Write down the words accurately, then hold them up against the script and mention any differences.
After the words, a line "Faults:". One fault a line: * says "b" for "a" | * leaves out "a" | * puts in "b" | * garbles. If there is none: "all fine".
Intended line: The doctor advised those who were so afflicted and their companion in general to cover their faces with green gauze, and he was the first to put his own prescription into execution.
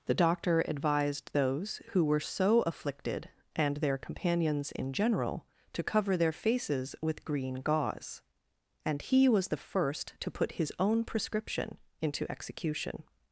The doctor advised those who were so afflicted and their companions in general to cover their faces with green gauze, and he was the first to put his own prescription into execution.
Faults:
* says "companions" for "companion"